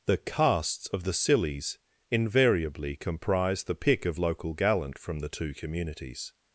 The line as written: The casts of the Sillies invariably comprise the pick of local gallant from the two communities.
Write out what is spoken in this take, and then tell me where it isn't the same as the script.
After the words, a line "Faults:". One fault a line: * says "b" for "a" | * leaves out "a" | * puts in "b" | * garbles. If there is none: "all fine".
The casts of the Sillies invariably comprise the pick of local gallant from the two communities.
Faults:
all fine